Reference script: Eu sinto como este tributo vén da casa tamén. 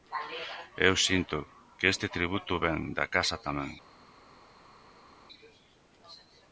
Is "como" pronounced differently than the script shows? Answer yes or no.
yes